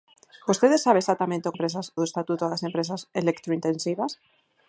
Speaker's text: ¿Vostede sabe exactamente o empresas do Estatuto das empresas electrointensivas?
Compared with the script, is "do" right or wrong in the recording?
right